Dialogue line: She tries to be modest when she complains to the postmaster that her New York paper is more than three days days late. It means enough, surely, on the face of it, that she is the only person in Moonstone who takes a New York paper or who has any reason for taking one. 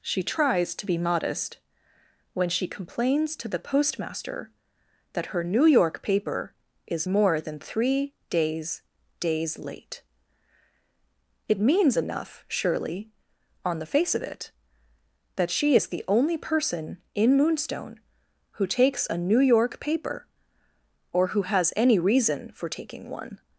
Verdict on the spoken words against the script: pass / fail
pass